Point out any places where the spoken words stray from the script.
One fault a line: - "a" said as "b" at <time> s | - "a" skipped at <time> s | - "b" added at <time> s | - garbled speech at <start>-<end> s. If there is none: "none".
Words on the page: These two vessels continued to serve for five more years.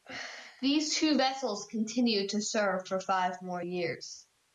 none